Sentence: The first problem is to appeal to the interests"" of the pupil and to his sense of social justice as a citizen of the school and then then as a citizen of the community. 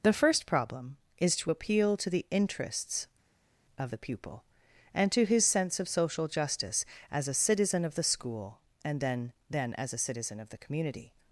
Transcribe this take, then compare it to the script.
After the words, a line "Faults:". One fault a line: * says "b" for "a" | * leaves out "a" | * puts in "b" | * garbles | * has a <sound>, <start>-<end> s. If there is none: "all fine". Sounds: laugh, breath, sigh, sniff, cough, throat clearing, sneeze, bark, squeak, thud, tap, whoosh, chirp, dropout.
The first problem is to appeal to the interests"" of the pupil and to his sense of social justice as a citizen of the school and then then as a citizen of the community.
Faults:
all fine